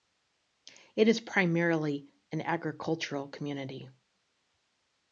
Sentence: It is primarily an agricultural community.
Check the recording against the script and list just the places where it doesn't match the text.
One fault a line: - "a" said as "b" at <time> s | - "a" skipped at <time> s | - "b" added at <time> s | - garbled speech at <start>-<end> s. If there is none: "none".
none